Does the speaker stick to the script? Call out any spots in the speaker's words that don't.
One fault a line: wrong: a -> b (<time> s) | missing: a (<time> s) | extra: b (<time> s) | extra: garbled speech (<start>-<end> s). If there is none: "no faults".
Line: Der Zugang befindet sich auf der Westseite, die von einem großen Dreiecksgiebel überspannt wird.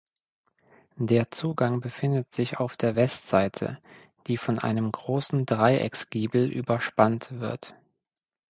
no faults